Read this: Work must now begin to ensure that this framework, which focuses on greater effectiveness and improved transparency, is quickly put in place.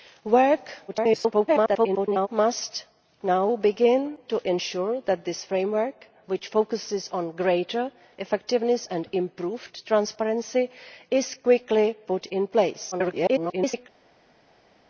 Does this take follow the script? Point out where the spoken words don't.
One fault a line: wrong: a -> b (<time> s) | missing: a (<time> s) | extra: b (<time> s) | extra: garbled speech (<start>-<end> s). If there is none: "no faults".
extra: garbled speech (0.9-2.3 s)
extra: garbled speech (12.9-13.9 s)